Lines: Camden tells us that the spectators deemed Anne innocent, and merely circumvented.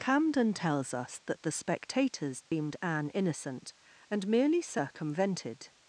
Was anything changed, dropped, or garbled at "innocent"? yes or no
no